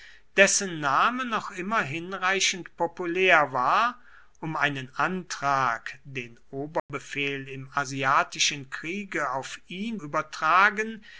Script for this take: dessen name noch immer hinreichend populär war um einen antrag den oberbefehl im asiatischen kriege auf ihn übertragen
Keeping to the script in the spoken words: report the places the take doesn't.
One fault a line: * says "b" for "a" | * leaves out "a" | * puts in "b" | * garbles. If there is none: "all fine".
all fine